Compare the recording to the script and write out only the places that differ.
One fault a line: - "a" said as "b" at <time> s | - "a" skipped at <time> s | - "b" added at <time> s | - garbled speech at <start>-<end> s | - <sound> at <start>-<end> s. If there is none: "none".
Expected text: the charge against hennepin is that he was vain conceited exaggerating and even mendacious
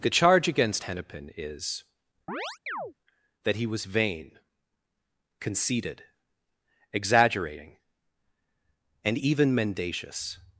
- chirp at 2.3-2.9 s